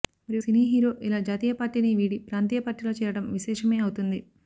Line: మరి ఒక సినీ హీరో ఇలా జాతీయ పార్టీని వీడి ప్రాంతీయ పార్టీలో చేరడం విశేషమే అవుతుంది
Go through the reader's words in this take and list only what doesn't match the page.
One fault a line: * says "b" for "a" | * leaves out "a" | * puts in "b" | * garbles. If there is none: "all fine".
* leaves out "ఒక"